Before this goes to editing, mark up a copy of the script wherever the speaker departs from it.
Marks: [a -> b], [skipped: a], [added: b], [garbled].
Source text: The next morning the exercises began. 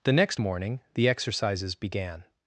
The next morning the exercises began.